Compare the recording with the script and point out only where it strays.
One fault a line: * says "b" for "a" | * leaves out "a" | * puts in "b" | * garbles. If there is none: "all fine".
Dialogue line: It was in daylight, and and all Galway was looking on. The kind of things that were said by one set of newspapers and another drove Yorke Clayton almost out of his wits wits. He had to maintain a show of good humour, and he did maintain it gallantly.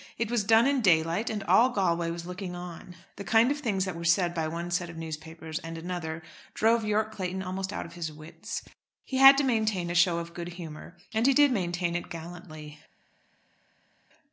* puts in "done"
* leaves out "and"
* leaves out "wits"